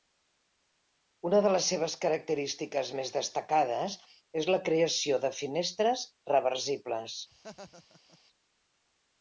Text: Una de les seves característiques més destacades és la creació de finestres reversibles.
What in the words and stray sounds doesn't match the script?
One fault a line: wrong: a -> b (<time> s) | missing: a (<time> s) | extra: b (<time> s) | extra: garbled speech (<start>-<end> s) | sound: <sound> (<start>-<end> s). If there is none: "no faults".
sound: laugh (7.3-8.2 s)